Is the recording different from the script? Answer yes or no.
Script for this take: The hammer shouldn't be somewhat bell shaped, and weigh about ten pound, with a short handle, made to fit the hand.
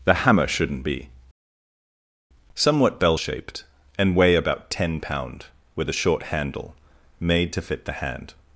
no